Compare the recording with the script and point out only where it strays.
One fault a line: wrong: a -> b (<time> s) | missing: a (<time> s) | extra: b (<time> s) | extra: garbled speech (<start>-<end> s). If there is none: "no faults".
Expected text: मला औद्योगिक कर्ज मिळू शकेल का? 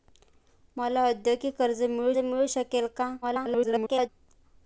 extra: मिळू (2.2 s)
extra: garbled speech (3.2-4.1 s)